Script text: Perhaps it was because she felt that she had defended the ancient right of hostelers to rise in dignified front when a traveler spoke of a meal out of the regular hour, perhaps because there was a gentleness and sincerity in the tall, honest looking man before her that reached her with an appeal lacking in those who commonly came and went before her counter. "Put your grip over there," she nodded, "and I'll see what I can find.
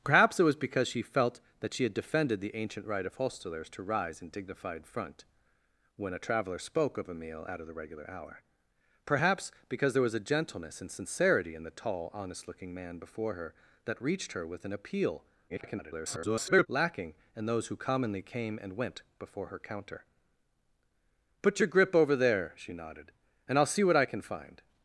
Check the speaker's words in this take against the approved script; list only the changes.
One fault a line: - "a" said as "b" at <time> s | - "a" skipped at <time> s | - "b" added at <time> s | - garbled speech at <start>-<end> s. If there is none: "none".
- garbled speech at 15.5-16.7 s